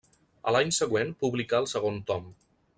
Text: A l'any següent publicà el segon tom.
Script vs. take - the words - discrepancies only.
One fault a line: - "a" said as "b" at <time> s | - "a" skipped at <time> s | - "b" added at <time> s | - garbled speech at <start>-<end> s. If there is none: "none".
none